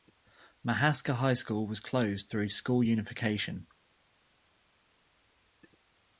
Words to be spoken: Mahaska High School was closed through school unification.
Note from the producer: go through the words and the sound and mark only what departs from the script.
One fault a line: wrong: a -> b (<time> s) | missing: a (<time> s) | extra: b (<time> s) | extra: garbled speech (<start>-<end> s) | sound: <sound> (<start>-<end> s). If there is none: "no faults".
no faults